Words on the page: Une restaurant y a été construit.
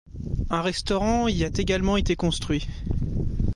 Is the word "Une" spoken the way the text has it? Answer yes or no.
no